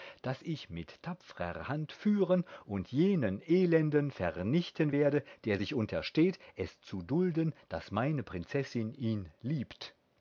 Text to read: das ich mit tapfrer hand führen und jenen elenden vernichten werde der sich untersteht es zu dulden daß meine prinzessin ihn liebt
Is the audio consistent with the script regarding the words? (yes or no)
yes